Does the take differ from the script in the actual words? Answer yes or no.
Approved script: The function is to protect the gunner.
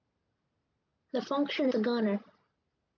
yes